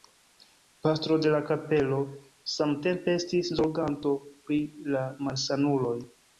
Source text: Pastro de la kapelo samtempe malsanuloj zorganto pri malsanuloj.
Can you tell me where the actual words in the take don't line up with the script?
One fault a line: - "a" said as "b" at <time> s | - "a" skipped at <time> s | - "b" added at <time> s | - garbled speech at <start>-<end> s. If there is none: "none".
- "malsanuloj" said as "estis" at 3.2 s
- "la" added at 5.0 s